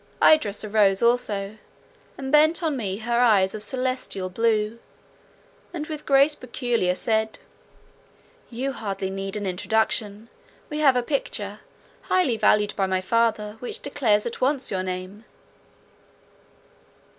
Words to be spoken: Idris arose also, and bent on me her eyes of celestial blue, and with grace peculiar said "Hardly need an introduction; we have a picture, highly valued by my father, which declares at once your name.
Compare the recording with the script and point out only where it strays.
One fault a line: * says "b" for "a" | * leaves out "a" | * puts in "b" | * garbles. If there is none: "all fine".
* puts in "You"